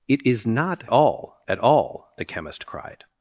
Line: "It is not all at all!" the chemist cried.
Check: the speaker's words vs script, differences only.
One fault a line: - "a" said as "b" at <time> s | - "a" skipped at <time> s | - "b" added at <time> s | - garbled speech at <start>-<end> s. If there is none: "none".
none